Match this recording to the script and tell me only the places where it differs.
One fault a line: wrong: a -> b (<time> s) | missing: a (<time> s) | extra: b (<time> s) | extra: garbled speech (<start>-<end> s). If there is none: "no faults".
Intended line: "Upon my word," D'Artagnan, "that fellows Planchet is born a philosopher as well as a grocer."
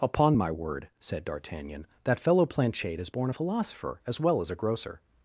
extra: said (1.0 s)
wrong: fellows -> fellow (2.2 s)